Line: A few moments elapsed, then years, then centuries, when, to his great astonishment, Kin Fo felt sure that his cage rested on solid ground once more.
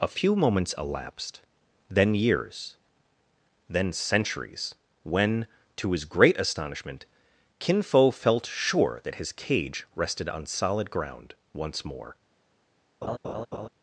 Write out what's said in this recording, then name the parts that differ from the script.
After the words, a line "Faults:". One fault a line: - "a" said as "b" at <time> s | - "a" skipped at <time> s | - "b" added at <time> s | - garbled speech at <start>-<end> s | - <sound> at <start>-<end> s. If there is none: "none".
A few moments elapsed, then years, then centuries, when, to his great astonishment, Kin Fo felt sure that his cage rested on solid ground once more.
Faults:
- laugh at 13.0-13.7 s